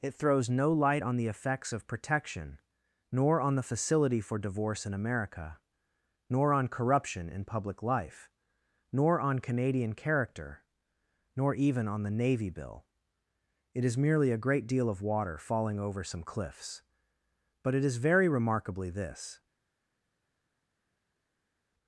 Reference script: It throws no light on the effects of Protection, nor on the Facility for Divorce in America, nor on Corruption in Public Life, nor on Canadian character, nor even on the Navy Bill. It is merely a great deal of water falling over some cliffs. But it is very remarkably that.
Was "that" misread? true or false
true